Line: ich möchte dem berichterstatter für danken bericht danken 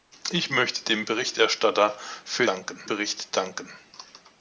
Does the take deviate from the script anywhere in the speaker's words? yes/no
no